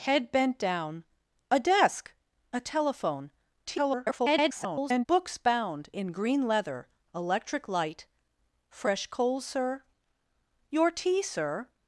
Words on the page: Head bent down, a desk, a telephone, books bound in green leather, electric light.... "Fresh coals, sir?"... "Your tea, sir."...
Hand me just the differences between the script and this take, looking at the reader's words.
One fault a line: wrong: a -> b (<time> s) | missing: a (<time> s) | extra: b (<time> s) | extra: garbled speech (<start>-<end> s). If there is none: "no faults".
extra: garbled speech (3.7-5.1 s)